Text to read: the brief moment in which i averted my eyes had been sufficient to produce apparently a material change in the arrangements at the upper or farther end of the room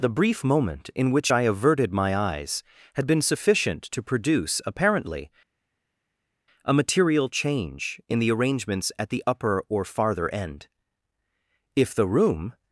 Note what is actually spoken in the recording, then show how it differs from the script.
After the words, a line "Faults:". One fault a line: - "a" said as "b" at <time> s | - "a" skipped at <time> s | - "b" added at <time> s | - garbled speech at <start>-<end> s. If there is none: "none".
the brief moment in which i averted my eyes had been sufficient to produce apparently a material change in the arrangements at the upper or farther end if the room
Faults:
- "of" said as "if" at 11.7 s